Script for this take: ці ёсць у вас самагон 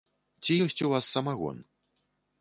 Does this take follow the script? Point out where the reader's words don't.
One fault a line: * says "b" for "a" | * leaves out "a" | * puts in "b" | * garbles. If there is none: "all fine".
all fine